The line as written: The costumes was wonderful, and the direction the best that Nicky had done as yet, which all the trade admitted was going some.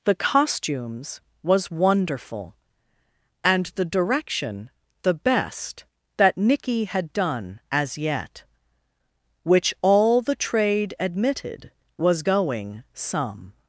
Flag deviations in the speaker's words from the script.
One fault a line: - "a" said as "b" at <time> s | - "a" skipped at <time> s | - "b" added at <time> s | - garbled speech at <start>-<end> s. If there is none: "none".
none